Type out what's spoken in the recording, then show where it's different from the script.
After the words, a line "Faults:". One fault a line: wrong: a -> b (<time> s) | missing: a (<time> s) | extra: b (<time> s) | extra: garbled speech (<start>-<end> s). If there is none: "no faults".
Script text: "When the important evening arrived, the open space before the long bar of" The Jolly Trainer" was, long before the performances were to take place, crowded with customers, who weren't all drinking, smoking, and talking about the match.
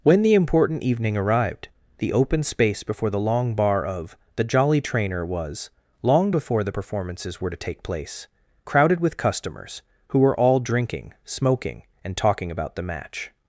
"When the important evening arrived, the open space before the long bar of" The Jolly Trainer" was, long before the performances were to take place, crowded with customers, who were all drinking, smoking, and talking about the match.
Faults:
wrong: weren't -> were (10.2 s)